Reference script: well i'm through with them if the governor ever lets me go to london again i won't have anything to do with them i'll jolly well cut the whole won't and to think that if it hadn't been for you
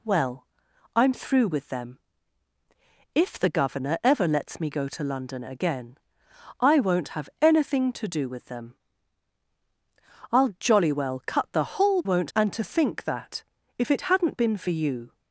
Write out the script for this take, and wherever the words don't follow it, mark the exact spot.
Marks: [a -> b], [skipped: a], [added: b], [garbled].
well i'm through with them if the governor ever lets me go to london again i won't have anything to do with them i'll jolly well cut the whole won't and to think that if it hadn't been for you